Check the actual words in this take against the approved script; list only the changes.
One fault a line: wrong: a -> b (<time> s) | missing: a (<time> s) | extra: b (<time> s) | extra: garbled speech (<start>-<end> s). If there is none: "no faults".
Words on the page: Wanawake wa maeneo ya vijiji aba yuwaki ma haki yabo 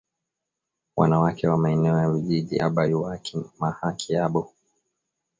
no faults